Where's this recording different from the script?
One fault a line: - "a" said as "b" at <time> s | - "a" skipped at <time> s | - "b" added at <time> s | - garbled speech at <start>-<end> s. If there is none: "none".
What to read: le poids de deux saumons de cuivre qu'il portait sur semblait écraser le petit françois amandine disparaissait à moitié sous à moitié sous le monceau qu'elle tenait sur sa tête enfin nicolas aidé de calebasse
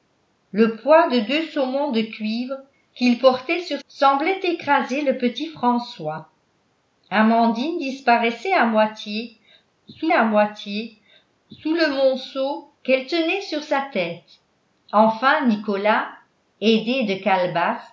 none